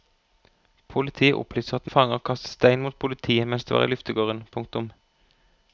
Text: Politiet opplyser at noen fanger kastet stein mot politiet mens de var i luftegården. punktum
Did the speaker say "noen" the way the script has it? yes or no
no